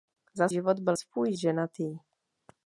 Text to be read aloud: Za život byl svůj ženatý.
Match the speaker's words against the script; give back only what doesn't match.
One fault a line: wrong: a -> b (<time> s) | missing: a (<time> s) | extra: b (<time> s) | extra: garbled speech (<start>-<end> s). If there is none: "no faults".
no faults